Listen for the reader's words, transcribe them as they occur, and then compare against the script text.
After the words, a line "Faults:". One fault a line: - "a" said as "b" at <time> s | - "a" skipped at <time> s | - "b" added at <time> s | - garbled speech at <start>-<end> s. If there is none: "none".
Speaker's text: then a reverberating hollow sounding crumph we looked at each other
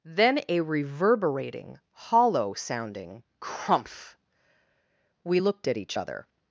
then a reverberating hollow sounding crumph we looked at each other
Faults:
none